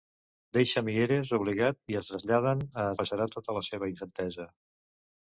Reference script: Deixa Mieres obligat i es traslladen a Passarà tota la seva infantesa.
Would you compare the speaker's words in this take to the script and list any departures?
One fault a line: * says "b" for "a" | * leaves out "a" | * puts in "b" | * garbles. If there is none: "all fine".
all fine